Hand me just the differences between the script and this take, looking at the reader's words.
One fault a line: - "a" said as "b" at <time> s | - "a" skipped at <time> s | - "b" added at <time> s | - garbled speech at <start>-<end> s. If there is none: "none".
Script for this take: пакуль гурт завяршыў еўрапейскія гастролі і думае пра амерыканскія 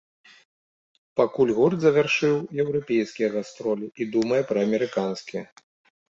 none